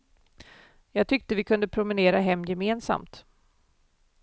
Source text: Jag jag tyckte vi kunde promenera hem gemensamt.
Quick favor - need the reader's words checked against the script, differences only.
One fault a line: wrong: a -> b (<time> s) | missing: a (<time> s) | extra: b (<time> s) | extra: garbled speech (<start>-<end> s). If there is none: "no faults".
missing: jag (1.1 s)